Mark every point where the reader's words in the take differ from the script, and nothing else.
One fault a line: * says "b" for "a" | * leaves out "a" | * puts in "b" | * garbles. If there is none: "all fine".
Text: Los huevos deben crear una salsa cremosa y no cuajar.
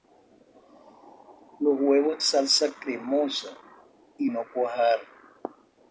* leaves out "deben crear una"